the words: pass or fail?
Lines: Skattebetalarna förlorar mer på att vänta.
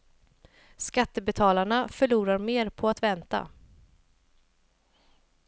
pass